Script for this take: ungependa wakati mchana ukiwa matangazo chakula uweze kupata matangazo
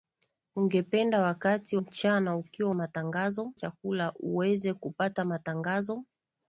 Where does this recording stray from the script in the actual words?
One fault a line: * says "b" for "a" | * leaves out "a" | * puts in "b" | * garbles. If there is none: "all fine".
all fine